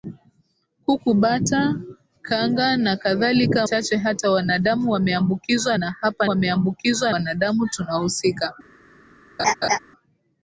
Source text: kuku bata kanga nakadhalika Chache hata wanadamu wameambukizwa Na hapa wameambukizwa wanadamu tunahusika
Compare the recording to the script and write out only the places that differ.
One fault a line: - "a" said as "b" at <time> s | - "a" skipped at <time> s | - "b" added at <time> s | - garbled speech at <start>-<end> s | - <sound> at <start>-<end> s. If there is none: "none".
- laugh at 9.4-9.8 s